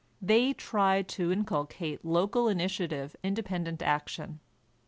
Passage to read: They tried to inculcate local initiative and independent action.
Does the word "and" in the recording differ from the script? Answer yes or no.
yes